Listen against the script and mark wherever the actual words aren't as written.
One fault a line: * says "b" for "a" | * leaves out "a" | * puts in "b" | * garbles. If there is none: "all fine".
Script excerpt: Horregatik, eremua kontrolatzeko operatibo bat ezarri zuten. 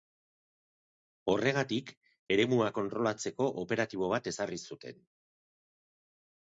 all fine